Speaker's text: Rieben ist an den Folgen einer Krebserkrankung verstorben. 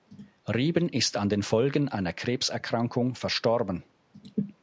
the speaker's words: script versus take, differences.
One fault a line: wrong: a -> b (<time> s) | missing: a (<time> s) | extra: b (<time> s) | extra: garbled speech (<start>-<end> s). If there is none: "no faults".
no faults